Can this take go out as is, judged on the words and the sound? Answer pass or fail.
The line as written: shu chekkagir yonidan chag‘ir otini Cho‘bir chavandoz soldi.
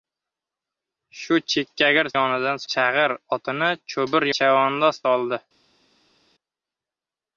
pass